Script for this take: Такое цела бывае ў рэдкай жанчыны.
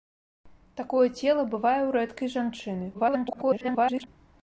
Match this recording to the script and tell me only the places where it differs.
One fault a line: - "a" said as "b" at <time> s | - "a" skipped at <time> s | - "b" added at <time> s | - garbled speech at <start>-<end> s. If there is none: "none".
- garbled speech at 2.9-4.1 s